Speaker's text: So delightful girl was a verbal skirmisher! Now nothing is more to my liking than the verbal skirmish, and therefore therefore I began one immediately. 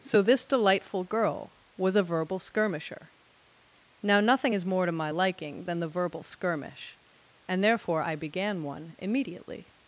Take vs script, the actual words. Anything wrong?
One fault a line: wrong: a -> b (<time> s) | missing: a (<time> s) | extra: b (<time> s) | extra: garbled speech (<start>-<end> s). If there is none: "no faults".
extra: this (0.2 s)
missing: therefore (8.0 s)